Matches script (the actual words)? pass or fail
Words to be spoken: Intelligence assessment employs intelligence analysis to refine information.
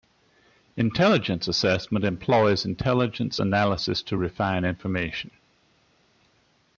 pass